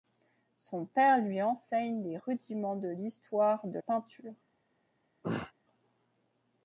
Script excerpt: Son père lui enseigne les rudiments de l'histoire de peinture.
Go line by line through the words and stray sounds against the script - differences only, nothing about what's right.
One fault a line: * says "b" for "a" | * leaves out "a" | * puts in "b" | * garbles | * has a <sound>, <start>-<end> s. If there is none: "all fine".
* has a throat clearing, 5.2-5.5 s